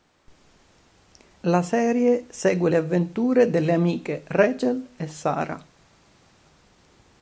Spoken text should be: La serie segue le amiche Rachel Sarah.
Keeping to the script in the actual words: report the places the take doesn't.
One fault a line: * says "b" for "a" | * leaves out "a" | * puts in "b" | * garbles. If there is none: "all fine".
* puts in "avventure delle"
* puts in "e"